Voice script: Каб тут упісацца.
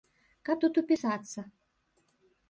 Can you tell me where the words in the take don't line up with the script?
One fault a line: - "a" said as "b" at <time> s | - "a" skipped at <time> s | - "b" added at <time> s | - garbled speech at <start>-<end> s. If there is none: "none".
none